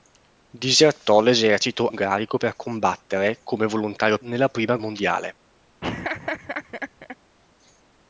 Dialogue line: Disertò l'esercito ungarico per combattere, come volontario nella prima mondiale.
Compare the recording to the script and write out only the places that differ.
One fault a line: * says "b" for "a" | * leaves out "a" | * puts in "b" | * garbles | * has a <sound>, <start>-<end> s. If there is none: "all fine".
* has a laugh, 5.8-7.2 s